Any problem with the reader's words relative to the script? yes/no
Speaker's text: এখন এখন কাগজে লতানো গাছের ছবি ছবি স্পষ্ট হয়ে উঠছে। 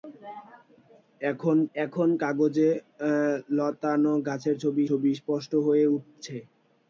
no